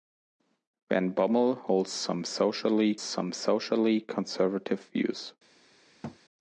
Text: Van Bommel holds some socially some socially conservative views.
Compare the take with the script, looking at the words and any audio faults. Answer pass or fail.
fail